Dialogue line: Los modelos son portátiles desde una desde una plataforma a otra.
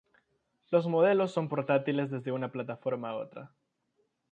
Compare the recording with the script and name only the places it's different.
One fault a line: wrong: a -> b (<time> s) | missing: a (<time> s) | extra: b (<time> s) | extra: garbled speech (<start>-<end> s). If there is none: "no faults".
missing: desde una (2.5 s)